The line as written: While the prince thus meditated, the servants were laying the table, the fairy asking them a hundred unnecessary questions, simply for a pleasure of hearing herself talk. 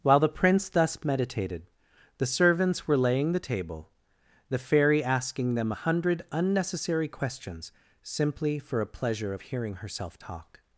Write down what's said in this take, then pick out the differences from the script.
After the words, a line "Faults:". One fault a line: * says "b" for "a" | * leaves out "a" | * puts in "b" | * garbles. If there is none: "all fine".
While the prince thus meditated, the servants were laying the table, the fairy asking them a hundred unnecessary questions, simply for a pleasure of hearing herself talk.
Faults:
all fine